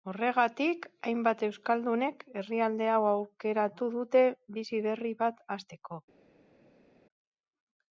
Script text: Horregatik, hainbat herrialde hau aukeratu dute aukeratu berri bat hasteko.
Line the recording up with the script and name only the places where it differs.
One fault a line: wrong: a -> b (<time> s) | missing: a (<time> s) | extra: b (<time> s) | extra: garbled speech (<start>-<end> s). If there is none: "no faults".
extra: euskaldunek (1.5 s)
wrong: aukeratu -> bizi (4.6 s)